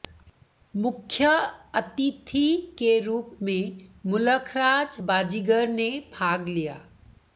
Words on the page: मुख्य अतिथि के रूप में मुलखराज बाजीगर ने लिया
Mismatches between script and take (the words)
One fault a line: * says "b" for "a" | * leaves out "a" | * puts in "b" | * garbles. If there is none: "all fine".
* puts in "भाग"